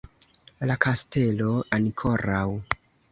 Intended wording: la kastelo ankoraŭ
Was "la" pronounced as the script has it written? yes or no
yes